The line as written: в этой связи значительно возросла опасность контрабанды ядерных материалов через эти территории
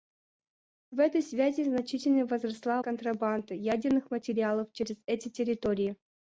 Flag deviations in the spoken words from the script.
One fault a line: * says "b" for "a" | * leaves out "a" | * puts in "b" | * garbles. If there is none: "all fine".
* leaves out "опасность"